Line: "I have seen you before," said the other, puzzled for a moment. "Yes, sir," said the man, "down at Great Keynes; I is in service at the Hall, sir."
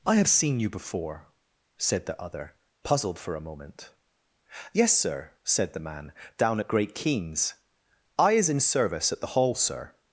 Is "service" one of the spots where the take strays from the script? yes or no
no